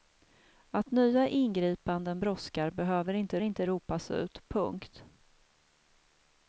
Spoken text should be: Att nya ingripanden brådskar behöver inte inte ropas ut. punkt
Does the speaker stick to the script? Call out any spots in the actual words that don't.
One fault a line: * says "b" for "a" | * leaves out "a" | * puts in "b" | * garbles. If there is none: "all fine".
all fine